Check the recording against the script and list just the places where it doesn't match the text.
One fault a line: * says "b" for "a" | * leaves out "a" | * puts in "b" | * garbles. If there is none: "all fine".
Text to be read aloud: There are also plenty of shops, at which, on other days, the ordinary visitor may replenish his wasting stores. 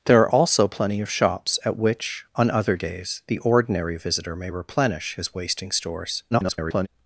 * garbles